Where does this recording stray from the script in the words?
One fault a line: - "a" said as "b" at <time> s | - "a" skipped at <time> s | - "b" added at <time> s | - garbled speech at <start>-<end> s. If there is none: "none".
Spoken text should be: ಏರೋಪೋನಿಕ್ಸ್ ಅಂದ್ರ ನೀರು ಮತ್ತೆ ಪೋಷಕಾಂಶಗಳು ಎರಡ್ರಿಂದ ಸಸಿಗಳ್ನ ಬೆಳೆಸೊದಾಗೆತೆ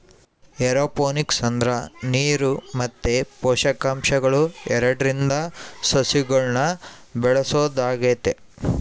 none